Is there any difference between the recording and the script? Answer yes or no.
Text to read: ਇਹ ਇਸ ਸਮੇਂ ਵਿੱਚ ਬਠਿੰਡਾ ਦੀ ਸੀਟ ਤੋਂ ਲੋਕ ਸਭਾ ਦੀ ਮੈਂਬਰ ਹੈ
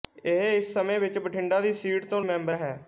yes